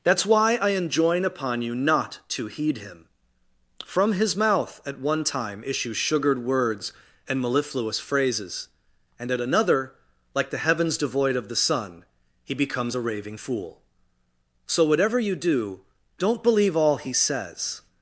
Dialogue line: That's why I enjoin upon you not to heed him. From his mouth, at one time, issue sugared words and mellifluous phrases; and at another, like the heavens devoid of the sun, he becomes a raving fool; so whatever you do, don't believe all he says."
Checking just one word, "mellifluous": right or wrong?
right